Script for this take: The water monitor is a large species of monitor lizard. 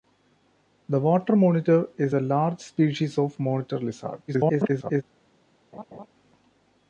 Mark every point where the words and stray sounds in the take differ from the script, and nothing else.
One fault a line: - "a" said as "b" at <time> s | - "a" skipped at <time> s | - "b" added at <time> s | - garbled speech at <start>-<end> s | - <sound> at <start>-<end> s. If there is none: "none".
- garbled speech at 4.3-5.0 s
- laugh at 5.7-6.1 s